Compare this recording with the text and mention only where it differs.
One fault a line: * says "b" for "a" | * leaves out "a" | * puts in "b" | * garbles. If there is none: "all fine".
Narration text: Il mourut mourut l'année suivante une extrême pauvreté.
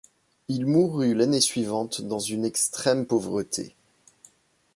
* leaves out "mourut"
* puts in "dans"